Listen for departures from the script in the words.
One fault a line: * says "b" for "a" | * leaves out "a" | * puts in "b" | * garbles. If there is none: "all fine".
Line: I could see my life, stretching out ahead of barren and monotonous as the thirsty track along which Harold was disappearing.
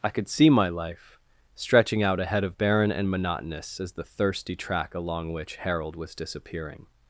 all fine